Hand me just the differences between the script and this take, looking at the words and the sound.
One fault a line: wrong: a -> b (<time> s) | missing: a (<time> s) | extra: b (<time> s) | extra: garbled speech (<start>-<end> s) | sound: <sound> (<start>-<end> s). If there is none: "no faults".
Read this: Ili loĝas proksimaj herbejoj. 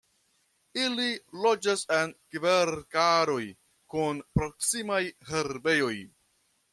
extra: en kverkaroj kun (2.0 s)